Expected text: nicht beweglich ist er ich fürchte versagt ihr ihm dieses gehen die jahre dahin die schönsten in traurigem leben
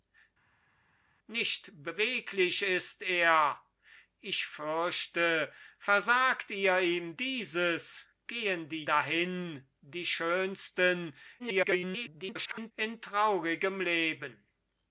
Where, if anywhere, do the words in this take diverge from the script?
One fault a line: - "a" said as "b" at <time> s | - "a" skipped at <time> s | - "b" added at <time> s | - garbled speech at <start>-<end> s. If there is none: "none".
- "jahre" skipped at 8.8 s
- garbled speech at 11.4-12.7 s